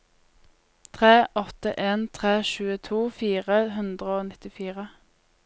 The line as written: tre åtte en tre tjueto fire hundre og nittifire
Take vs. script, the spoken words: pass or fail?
pass